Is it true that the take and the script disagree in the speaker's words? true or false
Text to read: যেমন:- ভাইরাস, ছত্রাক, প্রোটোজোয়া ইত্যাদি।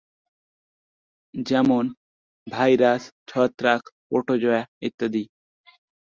false